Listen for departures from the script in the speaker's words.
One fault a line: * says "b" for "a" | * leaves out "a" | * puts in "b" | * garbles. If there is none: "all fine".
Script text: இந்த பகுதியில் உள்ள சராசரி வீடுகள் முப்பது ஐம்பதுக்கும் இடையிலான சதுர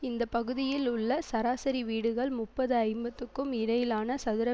all fine